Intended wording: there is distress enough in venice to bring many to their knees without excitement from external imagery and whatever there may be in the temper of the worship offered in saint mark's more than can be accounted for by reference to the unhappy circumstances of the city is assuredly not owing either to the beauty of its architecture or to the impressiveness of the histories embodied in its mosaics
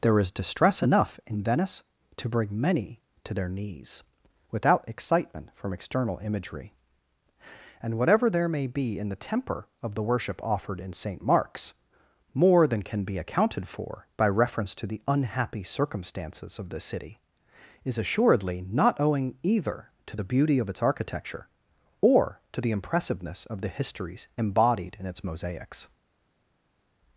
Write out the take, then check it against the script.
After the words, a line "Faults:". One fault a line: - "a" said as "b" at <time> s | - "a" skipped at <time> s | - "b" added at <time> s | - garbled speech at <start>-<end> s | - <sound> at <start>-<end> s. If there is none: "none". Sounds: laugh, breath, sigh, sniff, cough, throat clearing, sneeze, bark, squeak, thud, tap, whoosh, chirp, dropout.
there is distress enough in venice to bring many to their knees without excitement from external imagery and whatever there may be in the temper of the worship offered in saint mark's more than can be accounted for by reference to the unhappy circumstances of the city is assuredly not owing either to the beauty of its architecture or to the impressiveness of the histories embodied in its mosaics
Faults:
none